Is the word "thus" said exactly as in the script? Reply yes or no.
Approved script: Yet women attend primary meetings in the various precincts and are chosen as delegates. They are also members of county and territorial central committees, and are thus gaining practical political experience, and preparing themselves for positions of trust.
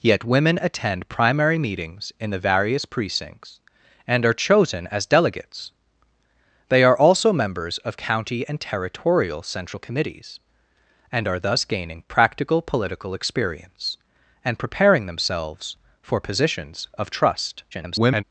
yes